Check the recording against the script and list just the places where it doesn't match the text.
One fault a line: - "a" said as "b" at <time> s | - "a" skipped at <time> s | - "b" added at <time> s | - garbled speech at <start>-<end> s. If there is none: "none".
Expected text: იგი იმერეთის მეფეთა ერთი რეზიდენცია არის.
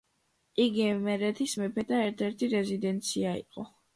- "ერთ" added at 2.1 s
- "არის" said as "იყო" at 3.4 s